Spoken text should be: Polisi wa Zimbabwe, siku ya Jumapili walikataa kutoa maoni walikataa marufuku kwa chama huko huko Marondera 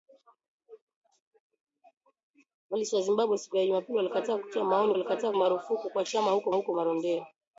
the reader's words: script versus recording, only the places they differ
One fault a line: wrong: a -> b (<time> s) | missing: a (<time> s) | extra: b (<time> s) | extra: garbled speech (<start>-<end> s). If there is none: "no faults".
no faults